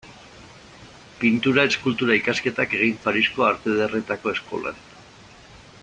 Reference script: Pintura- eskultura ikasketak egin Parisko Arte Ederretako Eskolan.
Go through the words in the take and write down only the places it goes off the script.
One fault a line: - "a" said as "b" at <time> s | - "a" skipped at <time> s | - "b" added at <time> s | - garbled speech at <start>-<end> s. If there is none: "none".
none